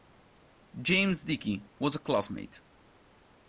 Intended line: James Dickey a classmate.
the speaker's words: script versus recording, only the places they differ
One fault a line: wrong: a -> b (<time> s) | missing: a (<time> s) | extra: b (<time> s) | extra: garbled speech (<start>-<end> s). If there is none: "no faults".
extra: was (1.8 s)